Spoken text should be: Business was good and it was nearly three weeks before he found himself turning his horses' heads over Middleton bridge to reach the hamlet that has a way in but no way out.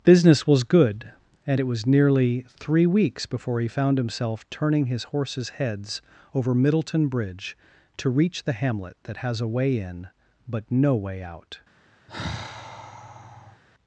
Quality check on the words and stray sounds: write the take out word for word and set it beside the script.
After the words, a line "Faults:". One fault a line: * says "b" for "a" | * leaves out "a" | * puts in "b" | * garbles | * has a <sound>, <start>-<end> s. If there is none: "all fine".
Business was good and it was nearly three weeks before he found himself turning his horses' heads over Middleton bridge to reach the hamlet that has a way in but no way out.
Faults:
* has a sigh, 12.1-13.6 s